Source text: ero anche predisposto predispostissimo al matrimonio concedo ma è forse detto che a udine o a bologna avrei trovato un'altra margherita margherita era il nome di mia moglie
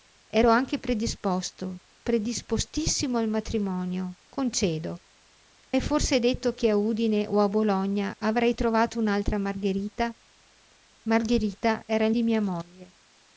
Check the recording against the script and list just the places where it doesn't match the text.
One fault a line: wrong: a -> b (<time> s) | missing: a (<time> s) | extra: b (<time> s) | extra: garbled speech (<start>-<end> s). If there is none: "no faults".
missing: ma (5.0 s)
missing: nome (12.1 s)